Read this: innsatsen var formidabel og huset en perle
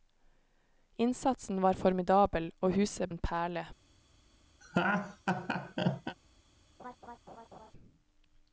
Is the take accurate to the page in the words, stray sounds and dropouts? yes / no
no